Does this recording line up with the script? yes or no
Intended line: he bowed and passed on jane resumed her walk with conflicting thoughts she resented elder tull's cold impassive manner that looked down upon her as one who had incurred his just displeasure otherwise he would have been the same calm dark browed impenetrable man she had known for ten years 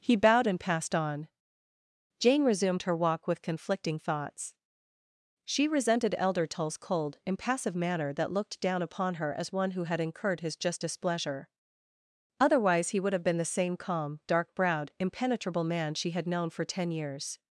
yes